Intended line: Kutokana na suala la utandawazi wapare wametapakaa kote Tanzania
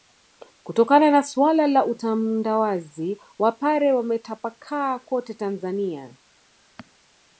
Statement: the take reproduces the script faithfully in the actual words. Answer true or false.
true